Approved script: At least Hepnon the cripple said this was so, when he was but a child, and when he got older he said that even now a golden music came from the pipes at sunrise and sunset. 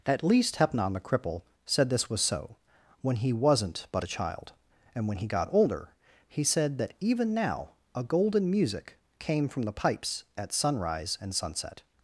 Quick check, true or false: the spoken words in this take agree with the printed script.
false